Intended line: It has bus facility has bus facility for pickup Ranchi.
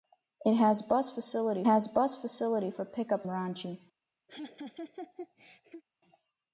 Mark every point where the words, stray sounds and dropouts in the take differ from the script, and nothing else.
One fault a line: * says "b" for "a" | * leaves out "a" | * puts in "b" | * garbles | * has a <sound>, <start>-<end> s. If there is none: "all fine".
* has a laugh, 4.3-5.8 s